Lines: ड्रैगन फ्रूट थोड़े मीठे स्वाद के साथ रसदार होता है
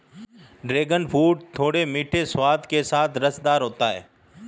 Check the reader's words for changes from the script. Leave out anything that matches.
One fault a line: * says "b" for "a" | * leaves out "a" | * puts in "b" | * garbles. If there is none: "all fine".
all fine